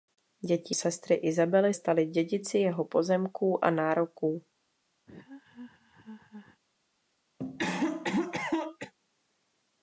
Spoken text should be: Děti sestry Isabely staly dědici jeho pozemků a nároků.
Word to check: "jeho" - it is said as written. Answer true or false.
true